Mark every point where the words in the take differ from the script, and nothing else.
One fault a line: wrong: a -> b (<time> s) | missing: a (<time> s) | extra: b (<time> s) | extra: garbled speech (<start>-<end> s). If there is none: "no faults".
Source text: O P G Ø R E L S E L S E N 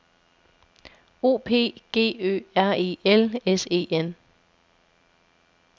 missing: L S E (3.9 s)